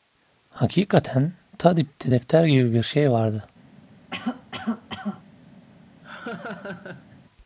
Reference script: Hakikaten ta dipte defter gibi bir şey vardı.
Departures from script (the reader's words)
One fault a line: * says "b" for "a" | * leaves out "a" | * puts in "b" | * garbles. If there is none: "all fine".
all fine